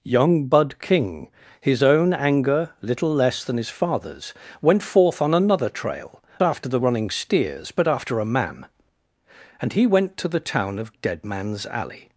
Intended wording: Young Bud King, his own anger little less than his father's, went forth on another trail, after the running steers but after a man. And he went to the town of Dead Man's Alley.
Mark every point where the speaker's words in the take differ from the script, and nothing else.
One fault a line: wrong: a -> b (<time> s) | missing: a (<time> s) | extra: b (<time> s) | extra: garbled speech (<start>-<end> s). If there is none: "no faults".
no faults